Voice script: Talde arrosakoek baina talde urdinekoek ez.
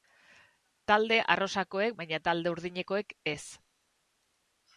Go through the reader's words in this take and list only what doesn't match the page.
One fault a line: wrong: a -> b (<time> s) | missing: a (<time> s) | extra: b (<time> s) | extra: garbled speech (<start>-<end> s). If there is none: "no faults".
no faults